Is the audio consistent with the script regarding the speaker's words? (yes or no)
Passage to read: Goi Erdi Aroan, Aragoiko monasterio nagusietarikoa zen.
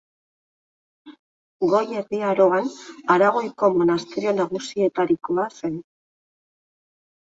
yes